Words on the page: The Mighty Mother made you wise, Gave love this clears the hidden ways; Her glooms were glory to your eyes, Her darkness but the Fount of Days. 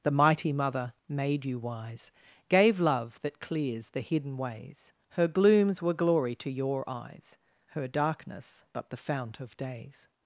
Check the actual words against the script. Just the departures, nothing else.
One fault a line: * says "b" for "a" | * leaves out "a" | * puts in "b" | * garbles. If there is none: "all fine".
* says "that" for "this"